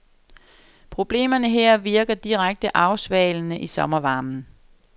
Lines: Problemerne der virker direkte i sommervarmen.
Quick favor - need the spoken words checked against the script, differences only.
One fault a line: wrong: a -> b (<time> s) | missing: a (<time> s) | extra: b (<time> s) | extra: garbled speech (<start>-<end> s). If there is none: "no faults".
wrong: der -> her (1.5 s)
extra: afsvalende (2.8 s)